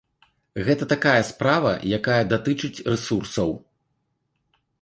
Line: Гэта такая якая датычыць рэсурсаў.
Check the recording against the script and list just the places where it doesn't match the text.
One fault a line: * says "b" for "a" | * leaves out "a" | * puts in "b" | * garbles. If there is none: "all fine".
* puts in "справа"